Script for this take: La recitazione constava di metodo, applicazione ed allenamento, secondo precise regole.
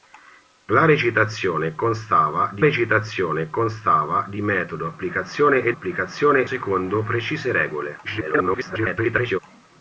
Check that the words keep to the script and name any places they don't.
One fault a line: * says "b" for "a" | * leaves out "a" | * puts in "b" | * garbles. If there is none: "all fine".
* puts in "recitazione constava di"
* says "applicazione" for "allenamento"
* garbles